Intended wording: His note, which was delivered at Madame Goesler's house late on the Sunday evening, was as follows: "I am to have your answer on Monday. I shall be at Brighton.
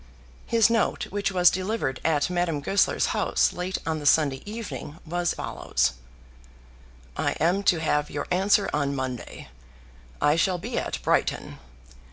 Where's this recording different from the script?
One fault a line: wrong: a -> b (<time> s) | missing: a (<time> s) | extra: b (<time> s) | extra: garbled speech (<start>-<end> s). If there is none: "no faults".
missing: as (5.3 s)